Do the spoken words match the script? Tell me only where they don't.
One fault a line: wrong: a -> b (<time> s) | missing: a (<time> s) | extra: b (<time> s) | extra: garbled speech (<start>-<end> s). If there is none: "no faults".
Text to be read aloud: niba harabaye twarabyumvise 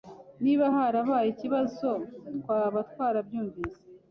extra: ikibazo twaba (1.3 s)